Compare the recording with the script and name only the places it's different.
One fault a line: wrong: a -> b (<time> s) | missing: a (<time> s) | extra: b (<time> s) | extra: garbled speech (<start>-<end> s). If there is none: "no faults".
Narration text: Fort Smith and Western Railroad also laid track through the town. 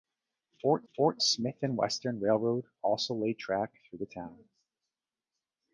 extra: fort (0.9 s)